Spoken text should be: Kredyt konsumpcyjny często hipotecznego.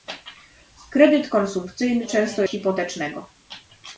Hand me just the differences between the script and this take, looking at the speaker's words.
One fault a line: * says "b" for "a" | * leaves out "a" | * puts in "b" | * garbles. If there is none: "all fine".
all fine